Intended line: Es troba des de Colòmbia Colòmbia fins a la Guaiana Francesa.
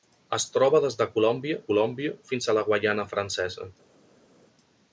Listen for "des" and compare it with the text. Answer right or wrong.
right